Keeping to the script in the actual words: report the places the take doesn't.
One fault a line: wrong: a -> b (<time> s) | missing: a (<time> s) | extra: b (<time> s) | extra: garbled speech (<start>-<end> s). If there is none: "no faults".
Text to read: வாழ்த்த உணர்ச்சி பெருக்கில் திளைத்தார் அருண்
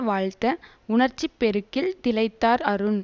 no faults